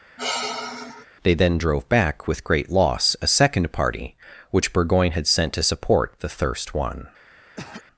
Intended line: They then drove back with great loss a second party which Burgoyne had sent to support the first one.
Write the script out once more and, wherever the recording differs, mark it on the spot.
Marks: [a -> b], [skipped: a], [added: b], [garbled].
They then drove back with great loss a second party which Burgoyne had sent to support the [first -> thirst] one.